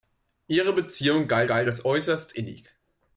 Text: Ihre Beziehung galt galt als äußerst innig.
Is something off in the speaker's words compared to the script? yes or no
no